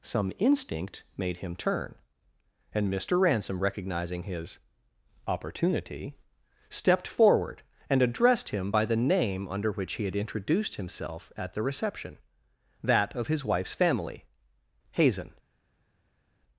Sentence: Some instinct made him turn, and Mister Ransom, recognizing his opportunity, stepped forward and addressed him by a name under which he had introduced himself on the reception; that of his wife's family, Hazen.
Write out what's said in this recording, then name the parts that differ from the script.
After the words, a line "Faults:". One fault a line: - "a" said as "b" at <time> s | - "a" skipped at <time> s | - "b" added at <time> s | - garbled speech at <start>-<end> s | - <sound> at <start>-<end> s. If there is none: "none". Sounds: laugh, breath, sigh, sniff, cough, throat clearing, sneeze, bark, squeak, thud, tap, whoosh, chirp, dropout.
Some instinct made him turn, and Mister Ransom, recognizing his opportunity, stepped forward and addressed him by the name under which he had introduced himself at the reception; that of his wife's family, Hazen.
Faults:
- "a" said as "the" at 8.8 s
- "on" said as "at" at 11.4 s